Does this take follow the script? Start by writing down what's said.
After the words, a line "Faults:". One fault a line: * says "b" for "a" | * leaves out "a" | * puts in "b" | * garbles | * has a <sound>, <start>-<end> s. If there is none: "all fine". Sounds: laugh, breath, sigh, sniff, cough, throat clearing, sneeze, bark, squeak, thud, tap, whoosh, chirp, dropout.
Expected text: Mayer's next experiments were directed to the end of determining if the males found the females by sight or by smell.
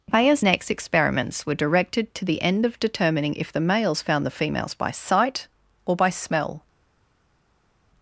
Mayer's next experiments were directed to the end of determining if the males found the females by sight or by smell.
Faults:
all fine